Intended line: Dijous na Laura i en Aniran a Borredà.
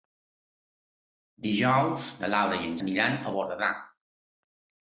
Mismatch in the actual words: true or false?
false